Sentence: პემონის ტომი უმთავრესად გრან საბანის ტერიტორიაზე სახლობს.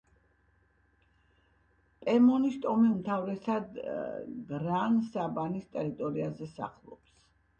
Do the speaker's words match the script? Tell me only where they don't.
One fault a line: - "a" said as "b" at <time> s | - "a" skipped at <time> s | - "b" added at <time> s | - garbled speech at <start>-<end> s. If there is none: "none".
none